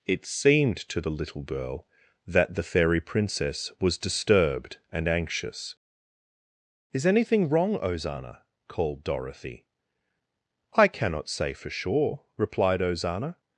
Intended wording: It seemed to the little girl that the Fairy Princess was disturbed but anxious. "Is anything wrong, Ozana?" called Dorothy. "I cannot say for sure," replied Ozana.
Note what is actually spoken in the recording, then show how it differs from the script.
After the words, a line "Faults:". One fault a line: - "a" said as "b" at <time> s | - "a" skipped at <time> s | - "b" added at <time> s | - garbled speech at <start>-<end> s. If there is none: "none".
It seemed to the little girl that the Fairy Princess was disturbed and anxious. "Is anything wrong, Ozana?" called Dorothy. "I cannot say for sure," replied Ozana.
Faults:
- "but" said as "and" at 4.9 s